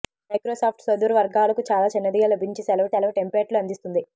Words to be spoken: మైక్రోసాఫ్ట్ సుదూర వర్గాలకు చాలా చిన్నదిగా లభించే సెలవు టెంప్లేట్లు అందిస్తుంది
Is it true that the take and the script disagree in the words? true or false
true